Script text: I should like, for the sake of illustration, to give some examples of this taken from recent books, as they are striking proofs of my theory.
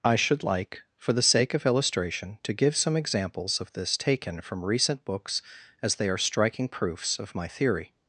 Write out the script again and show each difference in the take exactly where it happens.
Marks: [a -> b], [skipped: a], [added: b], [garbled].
I should like, for the sake of illustration, to give some examples of this taken from recent books, as they are striking proofs of my theory.